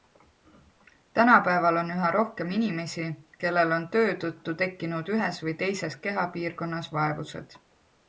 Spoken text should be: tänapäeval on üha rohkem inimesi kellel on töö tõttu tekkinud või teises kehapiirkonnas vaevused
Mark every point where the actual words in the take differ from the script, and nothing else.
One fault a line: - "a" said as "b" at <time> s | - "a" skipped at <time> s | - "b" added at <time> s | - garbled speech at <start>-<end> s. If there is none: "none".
- "ühes" added at 5.2 s